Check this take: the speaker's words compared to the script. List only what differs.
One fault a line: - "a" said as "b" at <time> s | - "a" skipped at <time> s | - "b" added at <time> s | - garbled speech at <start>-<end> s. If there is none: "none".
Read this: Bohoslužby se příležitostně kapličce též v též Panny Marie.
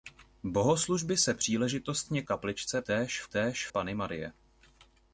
none